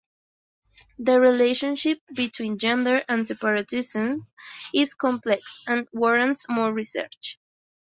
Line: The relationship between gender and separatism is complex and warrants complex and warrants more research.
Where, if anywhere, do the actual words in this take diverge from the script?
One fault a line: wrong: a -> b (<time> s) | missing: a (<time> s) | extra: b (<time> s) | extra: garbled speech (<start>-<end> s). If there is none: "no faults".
missing: complex and warrants (6.5 s)